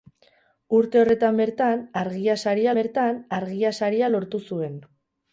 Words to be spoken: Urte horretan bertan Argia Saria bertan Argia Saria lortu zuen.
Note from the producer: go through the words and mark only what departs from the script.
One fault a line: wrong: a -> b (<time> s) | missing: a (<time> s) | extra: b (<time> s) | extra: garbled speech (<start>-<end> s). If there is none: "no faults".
no faults